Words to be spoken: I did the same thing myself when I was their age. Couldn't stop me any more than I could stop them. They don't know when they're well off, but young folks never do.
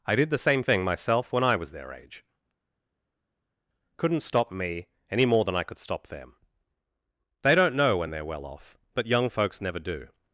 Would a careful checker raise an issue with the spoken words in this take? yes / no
no